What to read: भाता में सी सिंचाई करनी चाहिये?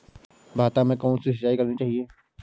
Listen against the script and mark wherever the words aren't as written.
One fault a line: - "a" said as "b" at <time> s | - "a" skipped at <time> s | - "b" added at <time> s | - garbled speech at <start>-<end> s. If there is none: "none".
- "कौन" added at 1.0 s